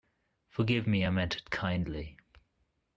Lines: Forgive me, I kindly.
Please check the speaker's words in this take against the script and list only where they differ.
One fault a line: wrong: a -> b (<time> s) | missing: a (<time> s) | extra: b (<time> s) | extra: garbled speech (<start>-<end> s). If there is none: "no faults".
extra: meant it (1.1 s)